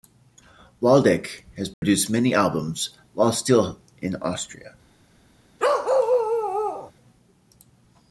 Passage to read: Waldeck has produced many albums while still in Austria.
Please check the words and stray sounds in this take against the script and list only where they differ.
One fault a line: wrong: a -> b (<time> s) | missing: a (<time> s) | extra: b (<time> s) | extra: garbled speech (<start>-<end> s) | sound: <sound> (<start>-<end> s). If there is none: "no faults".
sound: dropout (1.7-1.8 s)
sound: bark (5.6-6.9 s)